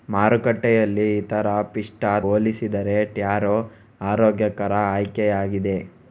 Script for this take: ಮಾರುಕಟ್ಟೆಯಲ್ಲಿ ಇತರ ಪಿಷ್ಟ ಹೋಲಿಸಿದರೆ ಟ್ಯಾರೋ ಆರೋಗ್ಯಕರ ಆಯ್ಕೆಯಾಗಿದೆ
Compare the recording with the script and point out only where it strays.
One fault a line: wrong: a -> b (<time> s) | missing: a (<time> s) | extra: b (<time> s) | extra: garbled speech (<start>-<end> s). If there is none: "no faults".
no faults